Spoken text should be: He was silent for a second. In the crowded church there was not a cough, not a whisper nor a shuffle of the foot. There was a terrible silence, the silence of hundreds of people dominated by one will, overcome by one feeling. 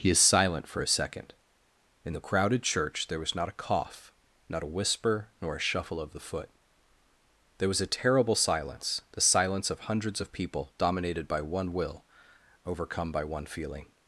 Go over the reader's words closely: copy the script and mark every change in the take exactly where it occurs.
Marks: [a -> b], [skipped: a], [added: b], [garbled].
He [was -> is] silent for a second. In the crowded church there was not a cough, not a whisper nor a shuffle of the foot. There was a terrible silence, the silence of hundreds of people dominated by one will, overcome by one feeling.